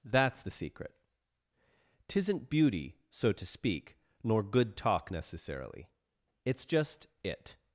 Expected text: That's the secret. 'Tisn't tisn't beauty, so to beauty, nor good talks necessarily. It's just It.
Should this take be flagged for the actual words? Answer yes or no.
yes